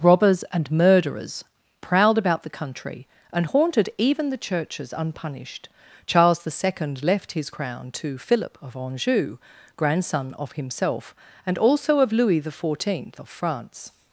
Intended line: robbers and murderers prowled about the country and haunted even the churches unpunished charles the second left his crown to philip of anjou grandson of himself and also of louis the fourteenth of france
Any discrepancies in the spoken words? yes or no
no